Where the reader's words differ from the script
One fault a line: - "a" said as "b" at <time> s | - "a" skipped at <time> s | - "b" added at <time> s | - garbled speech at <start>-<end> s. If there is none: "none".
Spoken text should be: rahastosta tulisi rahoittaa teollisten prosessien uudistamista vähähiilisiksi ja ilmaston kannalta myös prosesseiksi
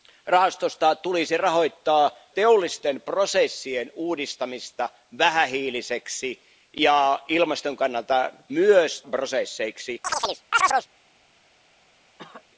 none